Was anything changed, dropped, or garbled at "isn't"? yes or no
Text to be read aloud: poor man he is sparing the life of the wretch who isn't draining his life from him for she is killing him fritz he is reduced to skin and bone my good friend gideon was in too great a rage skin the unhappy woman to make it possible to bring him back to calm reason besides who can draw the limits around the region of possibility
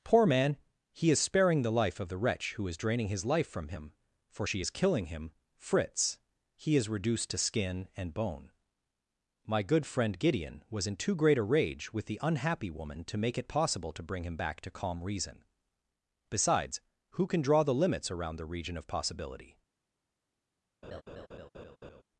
yes